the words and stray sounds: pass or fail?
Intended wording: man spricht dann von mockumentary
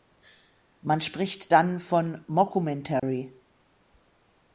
fail